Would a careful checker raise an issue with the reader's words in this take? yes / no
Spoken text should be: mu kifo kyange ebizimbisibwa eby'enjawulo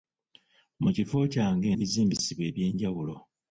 no